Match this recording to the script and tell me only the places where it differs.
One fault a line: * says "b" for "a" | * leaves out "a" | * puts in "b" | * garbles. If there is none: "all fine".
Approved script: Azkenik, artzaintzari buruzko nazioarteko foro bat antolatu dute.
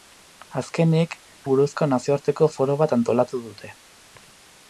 * leaves out "artzaintzari"